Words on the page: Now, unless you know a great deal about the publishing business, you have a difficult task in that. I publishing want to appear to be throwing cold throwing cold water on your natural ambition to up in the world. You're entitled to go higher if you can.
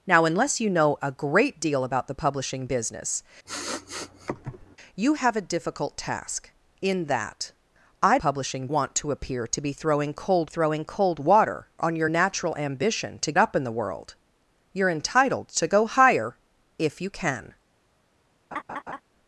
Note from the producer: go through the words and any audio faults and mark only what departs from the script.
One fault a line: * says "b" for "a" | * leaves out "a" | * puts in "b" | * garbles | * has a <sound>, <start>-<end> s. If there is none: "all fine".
* has a sniff, 3.5-4.8 s
* has a laugh, 18.5-19.0 s